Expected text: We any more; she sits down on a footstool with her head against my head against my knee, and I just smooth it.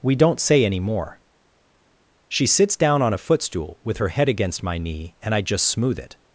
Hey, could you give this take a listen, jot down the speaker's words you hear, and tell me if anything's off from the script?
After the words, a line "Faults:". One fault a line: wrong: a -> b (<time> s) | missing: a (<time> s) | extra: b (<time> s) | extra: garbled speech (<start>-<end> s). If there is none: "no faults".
We don't say any more; she sits down on a footstool with her head against my knee, and I just smooth it.
Faults:
extra: don't say (0.1 s)
missing: head against my (4.8 s)